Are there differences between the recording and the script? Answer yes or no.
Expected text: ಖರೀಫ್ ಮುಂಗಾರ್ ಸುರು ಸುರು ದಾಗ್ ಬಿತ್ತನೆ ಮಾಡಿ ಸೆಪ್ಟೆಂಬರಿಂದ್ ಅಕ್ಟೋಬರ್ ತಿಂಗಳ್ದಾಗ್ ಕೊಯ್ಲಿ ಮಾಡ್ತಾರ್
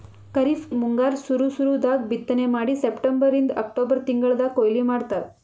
no